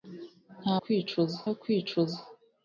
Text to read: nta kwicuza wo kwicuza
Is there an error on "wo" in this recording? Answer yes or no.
no